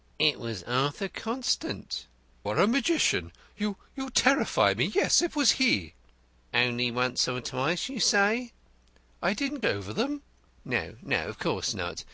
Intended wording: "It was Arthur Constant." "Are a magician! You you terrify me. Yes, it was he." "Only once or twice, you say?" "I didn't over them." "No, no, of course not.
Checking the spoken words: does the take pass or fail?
pass